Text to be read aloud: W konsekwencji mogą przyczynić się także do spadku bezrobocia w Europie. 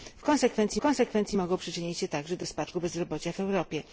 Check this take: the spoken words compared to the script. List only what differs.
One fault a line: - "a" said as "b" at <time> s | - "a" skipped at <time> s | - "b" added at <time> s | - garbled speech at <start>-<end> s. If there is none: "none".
- "konsekwencji" added at 0.8 s